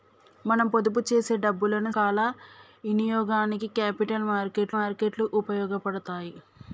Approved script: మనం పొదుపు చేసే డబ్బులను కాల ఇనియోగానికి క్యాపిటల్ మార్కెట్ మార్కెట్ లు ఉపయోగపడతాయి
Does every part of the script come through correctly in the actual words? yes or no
yes